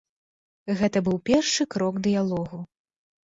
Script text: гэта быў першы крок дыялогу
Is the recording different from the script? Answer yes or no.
no